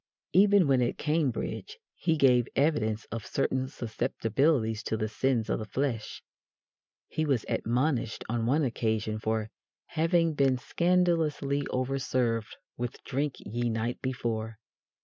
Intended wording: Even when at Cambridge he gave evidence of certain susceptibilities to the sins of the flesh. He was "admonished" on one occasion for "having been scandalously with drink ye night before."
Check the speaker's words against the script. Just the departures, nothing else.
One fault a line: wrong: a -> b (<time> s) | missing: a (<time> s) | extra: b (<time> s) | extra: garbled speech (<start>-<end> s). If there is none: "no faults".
extra: overserved (11.7 s)